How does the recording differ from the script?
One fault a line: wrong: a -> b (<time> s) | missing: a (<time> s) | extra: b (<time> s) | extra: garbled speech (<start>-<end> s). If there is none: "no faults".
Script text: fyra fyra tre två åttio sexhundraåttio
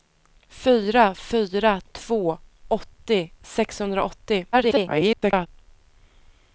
missing: tre (1.8 s)
extra: garbled speech (4.5-5.5 s)